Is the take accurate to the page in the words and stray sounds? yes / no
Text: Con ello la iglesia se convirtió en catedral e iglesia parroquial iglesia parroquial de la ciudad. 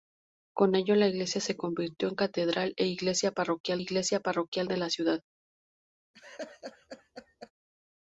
no